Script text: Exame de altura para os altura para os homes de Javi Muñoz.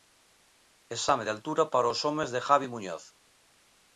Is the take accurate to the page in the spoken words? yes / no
no